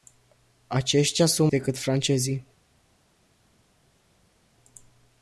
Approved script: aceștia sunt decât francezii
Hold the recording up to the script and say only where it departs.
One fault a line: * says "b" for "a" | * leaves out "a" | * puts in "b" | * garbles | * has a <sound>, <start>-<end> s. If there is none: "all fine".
all fine